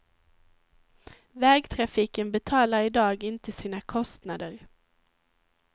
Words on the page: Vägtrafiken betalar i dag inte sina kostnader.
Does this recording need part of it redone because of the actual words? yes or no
no